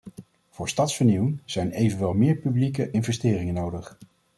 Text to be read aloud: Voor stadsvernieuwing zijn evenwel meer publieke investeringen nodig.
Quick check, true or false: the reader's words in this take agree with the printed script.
true